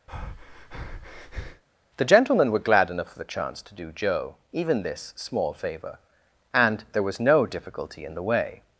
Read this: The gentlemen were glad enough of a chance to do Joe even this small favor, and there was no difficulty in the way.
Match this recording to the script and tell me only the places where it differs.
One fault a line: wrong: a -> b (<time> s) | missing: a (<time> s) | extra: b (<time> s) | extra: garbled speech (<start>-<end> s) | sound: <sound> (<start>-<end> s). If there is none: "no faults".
sound: breath (0.1-1.6 s)
wrong: a -> the (3.2 s)